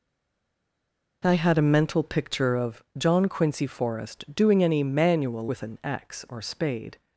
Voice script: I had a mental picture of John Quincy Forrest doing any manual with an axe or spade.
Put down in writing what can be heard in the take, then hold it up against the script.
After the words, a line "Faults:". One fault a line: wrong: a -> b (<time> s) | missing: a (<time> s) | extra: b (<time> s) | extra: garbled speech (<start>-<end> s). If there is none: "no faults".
I had a mental picture of John Quincy Forrest doing any manual with an axe or spade.
Faults:
no faults